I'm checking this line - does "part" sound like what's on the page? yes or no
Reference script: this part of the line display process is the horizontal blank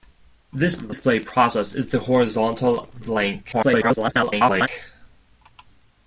no